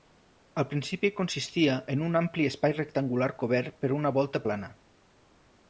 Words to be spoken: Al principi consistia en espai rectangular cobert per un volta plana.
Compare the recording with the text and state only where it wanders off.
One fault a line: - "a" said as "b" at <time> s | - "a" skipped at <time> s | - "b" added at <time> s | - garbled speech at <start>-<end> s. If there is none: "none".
- "un ampli" added at 2.1 s
- "un" said as "una" at 4.0 s